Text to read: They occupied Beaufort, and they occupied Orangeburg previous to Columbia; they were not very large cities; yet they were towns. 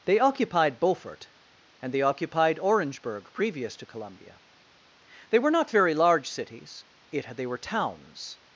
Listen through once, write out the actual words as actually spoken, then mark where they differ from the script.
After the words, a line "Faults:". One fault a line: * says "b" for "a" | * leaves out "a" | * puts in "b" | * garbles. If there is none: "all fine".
They occupied Beaufort, and they occupied Orangeburg previous to Columbia; they were not very large cities; yet they were towns.
Faults:
all fine